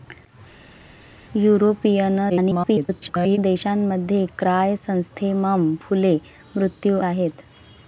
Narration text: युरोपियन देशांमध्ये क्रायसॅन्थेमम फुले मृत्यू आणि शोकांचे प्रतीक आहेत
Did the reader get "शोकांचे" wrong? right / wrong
wrong